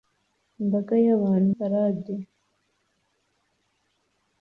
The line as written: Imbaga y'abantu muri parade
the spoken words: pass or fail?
fail